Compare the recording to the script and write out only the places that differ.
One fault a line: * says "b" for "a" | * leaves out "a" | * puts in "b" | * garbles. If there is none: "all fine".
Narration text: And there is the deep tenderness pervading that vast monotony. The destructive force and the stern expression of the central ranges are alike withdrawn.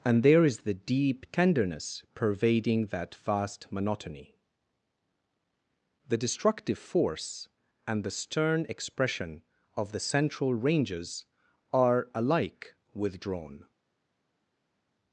all fine